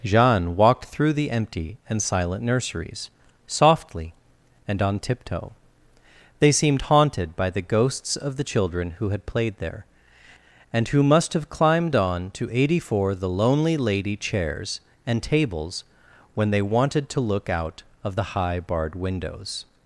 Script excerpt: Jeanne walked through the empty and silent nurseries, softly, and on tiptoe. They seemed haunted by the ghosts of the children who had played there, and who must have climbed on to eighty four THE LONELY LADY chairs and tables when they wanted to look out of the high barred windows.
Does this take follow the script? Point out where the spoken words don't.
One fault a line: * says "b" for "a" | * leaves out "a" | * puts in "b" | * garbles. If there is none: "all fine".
all fine